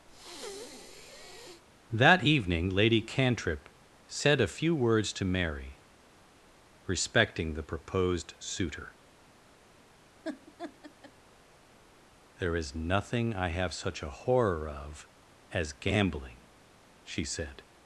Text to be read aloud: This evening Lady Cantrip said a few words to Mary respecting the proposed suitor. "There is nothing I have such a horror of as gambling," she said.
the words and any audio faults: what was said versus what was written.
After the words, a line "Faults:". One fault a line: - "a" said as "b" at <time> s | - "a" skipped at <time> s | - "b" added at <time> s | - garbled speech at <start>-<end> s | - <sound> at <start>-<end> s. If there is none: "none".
That evening Lady Cantrip said a few words to Mary respecting the proposed suitor. "There is nothing I have such a horror of as gambling," she said.
Faults:
- breath at 0.1-1.6 s
- "This" said as "That" at 1.9 s
- laugh at 10.2-11.1 s